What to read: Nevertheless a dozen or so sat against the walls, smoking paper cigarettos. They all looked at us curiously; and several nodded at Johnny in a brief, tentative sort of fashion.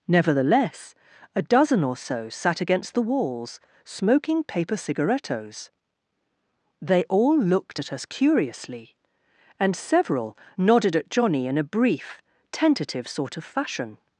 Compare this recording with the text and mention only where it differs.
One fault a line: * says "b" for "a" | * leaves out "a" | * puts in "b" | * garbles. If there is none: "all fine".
all fine